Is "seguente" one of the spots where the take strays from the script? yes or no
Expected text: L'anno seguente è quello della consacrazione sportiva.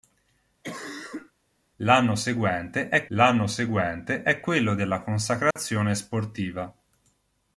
no